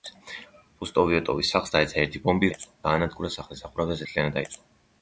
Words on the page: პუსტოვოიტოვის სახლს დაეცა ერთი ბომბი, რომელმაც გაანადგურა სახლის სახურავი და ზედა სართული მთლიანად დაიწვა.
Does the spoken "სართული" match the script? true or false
false